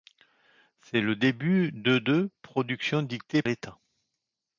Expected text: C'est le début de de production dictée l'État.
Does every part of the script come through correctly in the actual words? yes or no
yes